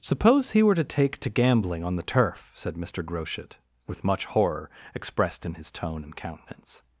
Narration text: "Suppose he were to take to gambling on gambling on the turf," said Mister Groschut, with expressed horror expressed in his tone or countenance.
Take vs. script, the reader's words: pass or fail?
fail